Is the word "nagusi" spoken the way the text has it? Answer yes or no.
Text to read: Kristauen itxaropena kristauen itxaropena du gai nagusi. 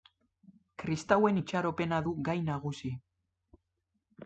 yes